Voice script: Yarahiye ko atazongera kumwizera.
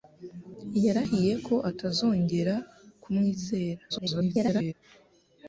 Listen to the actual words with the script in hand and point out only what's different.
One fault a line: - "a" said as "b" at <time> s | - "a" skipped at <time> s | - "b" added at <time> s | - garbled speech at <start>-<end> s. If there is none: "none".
- garbled speech at 3.9-4.7 s